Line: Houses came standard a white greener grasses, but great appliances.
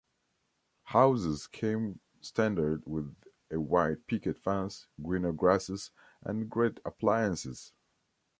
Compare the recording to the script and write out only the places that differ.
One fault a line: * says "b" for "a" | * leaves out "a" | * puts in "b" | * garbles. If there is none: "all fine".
* puts in "with"
* puts in "picket fence"
* says "and" for "but"